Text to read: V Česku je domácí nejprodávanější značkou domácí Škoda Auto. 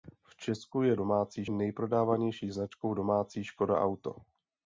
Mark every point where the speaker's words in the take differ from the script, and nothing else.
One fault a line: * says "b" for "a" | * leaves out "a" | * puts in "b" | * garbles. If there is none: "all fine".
all fine